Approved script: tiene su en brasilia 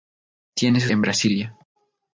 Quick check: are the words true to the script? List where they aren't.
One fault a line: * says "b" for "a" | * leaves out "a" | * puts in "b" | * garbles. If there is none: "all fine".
all fine